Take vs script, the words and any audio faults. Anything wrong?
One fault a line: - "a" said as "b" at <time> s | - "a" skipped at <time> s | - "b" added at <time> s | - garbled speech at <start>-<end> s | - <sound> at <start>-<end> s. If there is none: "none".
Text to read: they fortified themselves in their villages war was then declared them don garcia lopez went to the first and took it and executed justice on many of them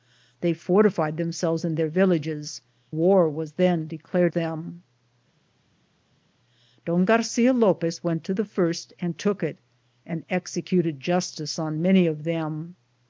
none